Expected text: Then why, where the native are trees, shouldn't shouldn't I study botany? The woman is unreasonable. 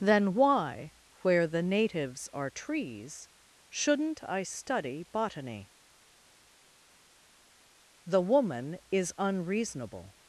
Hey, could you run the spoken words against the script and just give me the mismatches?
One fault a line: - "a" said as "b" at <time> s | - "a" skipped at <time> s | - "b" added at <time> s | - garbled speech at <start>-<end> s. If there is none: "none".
- "native" said as "natives" at 1.6 s
- "shouldn't" skipped at 4.2 s